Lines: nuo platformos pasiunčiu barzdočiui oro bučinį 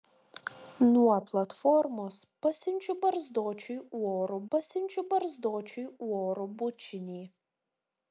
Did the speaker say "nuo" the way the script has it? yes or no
yes